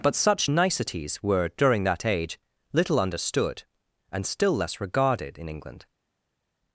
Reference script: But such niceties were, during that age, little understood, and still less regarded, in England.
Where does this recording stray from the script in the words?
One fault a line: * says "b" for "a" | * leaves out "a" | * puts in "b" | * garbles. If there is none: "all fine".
all fine